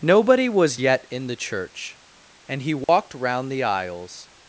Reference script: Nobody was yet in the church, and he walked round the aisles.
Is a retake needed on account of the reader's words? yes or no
no